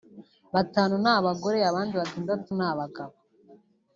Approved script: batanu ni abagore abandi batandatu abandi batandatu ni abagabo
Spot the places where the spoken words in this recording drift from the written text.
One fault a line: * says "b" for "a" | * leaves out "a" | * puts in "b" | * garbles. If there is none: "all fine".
* leaves out "abandi batandatu"